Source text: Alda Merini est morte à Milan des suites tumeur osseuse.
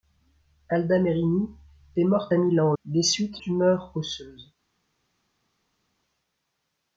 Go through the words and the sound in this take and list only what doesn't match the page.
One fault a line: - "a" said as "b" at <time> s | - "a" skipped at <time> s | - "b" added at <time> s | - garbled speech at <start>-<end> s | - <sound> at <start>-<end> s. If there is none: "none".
none